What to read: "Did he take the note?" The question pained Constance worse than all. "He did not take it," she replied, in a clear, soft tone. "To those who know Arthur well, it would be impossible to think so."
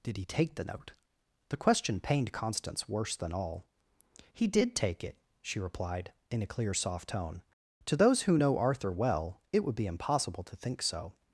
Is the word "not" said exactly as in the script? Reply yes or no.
no